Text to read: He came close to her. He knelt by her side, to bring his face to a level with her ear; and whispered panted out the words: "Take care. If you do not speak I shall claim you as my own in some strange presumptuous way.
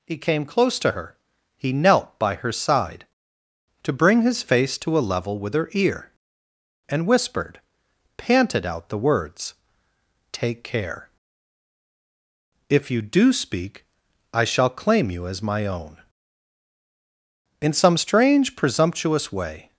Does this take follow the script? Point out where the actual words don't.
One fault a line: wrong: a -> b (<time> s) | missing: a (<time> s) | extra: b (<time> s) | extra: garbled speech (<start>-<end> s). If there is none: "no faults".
missing: not (13.3 s)